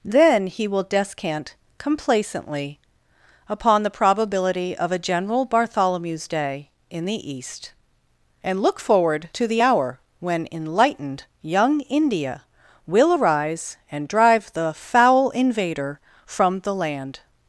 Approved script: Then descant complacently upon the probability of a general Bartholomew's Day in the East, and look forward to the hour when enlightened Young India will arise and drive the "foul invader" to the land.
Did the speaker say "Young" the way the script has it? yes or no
yes